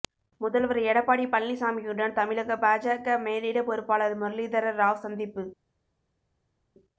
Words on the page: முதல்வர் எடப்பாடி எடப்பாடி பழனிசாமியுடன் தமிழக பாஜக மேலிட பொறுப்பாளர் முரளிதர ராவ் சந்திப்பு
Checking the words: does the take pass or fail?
fail